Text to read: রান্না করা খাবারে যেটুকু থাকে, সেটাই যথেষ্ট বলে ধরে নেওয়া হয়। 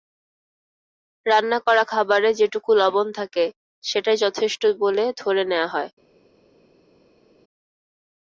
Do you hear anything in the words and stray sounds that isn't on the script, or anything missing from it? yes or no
yes